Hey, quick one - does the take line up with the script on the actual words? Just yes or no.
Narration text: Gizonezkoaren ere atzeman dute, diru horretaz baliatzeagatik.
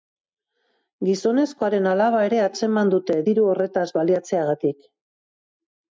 no